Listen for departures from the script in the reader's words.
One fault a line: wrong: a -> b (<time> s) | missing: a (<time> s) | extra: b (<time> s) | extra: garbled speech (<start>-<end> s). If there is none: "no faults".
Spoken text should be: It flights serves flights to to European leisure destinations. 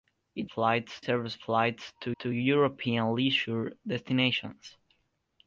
no faults